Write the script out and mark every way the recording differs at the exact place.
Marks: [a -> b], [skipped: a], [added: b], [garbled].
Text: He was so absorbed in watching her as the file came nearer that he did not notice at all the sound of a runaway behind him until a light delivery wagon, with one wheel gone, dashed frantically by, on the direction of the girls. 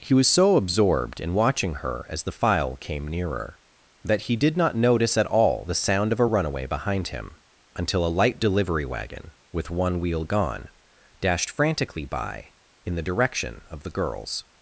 He was so absorbed in watching her as the file came nearer that he did not notice at all the sound of a runaway behind him until a light delivery wagon, with one wheel gone, dashed frantically by, [on -> in] the direction of the girls.